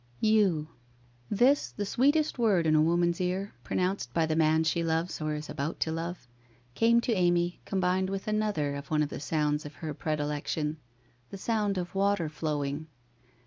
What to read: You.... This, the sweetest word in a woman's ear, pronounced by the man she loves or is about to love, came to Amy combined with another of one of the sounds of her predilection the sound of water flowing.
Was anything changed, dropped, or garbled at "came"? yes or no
no